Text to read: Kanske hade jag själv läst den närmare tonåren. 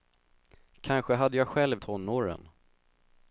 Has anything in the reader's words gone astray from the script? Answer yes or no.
yes